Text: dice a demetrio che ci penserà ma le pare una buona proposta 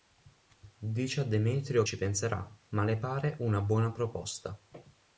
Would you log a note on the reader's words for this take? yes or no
yes